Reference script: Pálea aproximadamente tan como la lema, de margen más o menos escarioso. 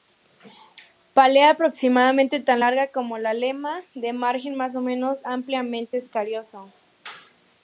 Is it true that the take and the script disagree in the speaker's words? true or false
true